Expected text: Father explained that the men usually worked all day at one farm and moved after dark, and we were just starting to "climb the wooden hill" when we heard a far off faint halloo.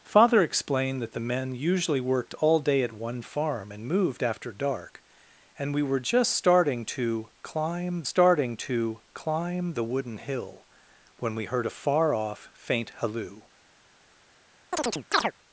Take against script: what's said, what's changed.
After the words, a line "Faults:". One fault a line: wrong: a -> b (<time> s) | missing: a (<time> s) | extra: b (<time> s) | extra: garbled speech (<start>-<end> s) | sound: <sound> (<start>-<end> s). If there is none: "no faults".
Father explained that the men usually worked all day at one farm and moved after dark, and we were just starting to "climb starting to climb the wooden hill" when we heard a far off faint halloo.
Faults:
extra: starting to climb (8.1 s)
sound: chirp (14.7-15.3 s)